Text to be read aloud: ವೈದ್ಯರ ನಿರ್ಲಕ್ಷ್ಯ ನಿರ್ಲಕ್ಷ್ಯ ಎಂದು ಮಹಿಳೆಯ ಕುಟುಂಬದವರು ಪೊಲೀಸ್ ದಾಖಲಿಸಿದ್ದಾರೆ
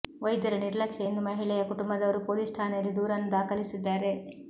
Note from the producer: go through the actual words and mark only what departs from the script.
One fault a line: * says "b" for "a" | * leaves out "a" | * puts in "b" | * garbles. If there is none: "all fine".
* leaves out "ನಿರ್ಲಕ್ಷ್ಯ"
* puts in "ಠಾಣೆಯಲ್ಲಿ ದೂರನ್ನು"